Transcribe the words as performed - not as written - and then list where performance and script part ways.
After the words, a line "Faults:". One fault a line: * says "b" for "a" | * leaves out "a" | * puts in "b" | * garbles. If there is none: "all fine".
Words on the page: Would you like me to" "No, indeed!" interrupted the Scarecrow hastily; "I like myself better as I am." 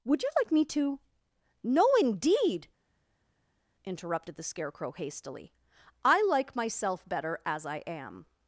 Would you like me to" "No, indeed!" interrupted the Scarecrow hastily; "I like myself better as I am."
Faults:
all fine